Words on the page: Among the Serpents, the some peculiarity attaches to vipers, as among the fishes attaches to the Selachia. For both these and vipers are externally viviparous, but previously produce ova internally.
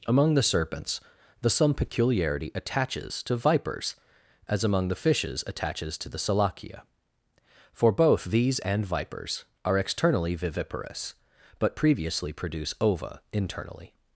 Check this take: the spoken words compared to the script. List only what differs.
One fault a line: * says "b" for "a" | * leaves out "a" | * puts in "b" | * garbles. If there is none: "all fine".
all fine